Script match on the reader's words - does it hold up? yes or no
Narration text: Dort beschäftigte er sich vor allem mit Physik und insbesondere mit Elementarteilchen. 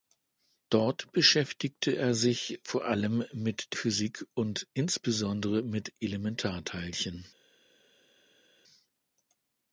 yes